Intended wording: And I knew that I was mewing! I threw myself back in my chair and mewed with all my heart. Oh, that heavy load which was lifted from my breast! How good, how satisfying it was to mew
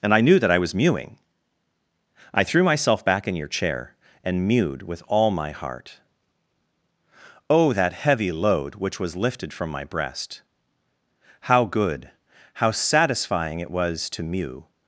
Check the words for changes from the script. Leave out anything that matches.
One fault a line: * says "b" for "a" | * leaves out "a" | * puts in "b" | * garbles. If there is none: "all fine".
* says "your" for "my"